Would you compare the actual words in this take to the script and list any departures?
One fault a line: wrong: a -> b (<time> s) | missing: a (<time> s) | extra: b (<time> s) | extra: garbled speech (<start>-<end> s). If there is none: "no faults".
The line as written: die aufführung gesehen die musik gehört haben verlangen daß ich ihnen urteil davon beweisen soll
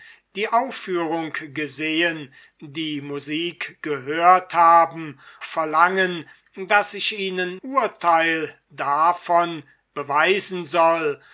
no faults